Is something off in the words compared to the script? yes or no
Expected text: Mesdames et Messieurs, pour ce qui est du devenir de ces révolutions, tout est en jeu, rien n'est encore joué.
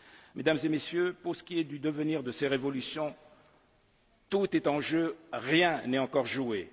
no